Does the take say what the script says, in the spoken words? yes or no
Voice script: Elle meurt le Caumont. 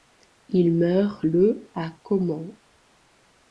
no